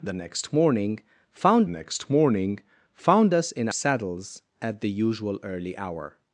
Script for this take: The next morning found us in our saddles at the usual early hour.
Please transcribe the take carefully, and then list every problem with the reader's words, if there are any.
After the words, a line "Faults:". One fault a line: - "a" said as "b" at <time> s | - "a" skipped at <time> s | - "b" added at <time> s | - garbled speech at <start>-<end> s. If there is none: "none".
The next morning found next morning found us in saddles at the usual early hour.
Faults:
- "next morning found" added at 1.7 s
- "our" skipped at 3.7 s